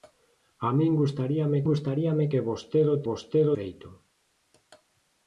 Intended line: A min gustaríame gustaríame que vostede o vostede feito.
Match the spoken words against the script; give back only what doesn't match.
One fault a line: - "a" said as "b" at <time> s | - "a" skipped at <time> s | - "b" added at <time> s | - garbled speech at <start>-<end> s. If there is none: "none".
none